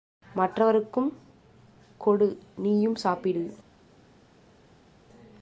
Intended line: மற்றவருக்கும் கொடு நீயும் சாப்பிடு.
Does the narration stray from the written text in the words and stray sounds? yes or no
no